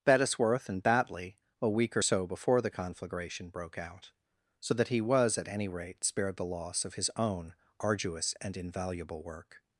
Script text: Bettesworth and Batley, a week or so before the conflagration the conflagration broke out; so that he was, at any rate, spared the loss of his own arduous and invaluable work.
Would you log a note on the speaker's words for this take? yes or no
yes